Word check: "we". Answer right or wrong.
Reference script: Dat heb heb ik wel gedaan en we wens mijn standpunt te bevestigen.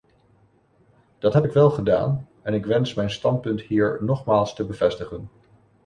wrong